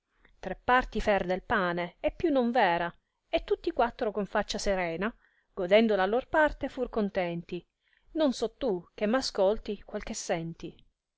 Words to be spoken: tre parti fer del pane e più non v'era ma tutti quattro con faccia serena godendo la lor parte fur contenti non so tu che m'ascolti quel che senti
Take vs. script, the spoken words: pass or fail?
fail